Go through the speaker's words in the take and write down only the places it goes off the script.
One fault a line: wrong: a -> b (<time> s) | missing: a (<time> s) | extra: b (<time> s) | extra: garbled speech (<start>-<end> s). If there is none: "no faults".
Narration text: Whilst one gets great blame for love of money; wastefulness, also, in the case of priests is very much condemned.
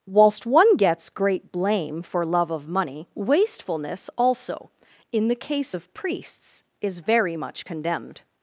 no faults